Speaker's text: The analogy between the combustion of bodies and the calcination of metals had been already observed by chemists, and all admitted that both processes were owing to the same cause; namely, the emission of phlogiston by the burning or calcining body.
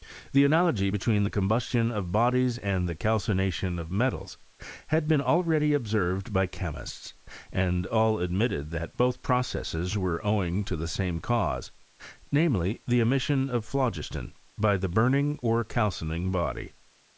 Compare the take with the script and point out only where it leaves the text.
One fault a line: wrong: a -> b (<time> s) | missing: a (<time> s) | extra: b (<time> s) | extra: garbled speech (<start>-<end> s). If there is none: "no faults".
no faults